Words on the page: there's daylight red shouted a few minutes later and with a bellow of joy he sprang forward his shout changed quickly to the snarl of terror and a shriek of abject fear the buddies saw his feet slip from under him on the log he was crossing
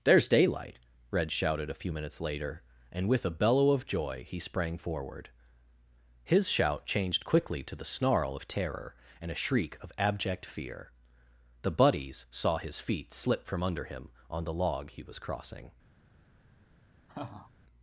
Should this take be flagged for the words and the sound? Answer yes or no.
yes